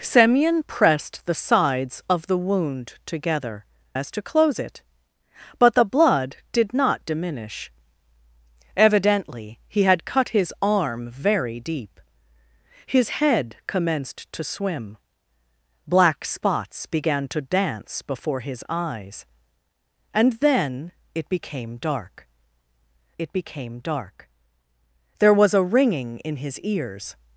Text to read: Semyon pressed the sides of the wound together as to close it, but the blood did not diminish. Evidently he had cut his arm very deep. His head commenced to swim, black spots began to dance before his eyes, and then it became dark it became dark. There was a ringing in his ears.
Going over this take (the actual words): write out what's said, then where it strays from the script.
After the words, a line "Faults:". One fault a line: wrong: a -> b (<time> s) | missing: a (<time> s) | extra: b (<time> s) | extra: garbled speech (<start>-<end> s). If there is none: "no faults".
Semyon pressed the sides of the wound together as to close it, but the blood did not diminish. Evidently he had cut his arm very deep. His head commenced to swim, black spots began to dance before his eyes, and then it became dark it became dark. There was a ringing in his ears.
Faults:
no faults